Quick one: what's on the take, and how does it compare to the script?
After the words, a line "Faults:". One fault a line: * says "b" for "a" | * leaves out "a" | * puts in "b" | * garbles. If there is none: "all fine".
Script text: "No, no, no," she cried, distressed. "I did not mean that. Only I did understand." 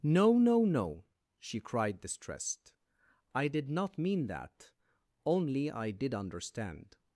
"No, no, no," she cried, distressed. "I did not mean that. Only I did understand."
Faults:
all fine